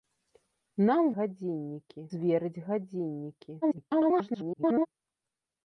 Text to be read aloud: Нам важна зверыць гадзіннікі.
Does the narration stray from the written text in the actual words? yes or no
yes